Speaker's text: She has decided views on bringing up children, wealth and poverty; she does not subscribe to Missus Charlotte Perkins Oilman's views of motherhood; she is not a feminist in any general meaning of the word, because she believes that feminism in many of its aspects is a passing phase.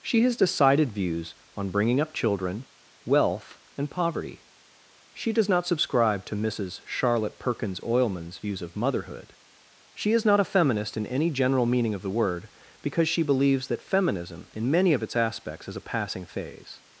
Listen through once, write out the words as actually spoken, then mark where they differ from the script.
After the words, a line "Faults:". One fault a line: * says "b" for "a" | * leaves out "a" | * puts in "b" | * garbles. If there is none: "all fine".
She has decided views on bringing up children, wealth and poverty; she does not subscribe to Missus Charlotte Perkins Oilman's views of motherhood; she is not a feminist in any general meaning of the word, because she believes that feminism in many of its aspects is a passing phase.
Faults:
all fine